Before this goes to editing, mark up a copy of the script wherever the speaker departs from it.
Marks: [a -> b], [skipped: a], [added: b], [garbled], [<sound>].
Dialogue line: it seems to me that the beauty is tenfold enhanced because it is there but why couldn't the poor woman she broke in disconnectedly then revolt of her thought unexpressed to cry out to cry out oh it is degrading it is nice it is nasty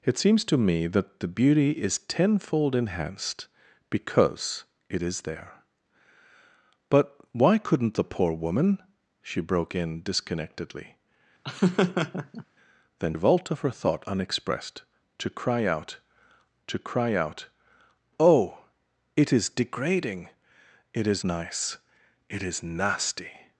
it seems to me that the beauty is tenfold enhanced because it is there but why couldn't the poor woman she broke in disconnectedly [laugh] then revolt of her thought unexpressed to cry out to cry out oh it is degrading it is nice it is nasty